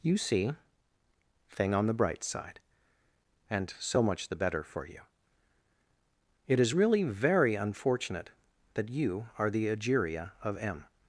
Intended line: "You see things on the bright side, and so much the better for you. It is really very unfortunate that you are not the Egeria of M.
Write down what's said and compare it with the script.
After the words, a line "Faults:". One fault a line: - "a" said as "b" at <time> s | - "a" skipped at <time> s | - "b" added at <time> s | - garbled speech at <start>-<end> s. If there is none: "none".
"You see thing on the bright side, and so much the better for you. It is really very unfortunate that you are the Egeria of M.
Faults:
- "things" said as "thing" at 1.5 s
- "not" skipped at 9.5 s